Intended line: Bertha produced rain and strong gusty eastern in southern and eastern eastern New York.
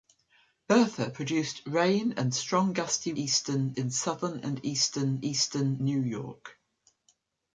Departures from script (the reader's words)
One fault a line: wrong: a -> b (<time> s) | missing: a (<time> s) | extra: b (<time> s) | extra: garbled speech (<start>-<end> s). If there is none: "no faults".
no faults